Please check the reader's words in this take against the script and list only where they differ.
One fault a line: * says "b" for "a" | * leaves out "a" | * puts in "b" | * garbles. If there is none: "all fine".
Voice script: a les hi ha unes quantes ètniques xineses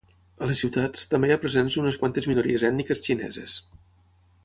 * puts in "ciutats també"
* puts in "presents"
* puts in "minories"